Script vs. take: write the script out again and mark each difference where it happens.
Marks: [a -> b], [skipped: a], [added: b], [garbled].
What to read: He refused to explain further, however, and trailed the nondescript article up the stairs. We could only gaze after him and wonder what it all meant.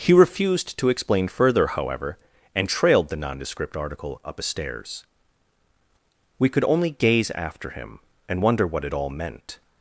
He refused to explain further, however, and trailed the nondescript article up [the -> a] stairs. We could only gaze after him and wonder what it all meant.